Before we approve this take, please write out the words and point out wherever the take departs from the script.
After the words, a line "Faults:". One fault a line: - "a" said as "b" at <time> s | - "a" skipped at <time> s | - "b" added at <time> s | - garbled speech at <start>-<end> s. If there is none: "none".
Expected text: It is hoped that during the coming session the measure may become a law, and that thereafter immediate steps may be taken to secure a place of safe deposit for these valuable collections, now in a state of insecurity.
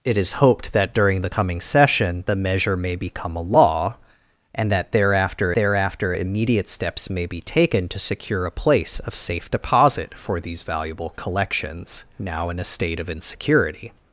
It is hoped that during the coming session the measure may become a law, and that thereafter thereafter immediate steps may be taken to secure a place of safe deposit for these valuable collections, now in a state of insecurity.
Faults:
- "thereafter" added at 5.5 s